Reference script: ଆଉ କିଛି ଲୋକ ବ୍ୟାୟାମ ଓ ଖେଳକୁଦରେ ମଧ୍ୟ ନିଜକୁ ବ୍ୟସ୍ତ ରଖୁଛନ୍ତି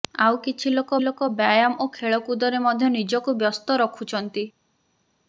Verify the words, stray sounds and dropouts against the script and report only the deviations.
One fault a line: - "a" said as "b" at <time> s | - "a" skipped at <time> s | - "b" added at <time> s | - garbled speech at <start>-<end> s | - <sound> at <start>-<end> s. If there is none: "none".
- "ଲୋକ" added at 1.0 s